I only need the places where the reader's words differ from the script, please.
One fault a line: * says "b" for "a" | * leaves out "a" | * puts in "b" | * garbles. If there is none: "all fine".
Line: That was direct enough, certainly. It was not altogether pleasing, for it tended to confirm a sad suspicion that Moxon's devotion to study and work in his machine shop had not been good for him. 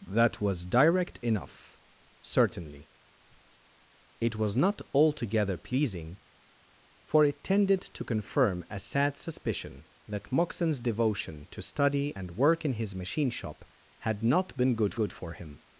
* puts in "good"